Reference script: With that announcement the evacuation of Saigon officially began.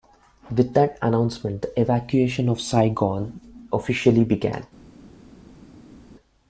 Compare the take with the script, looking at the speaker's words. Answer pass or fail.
pass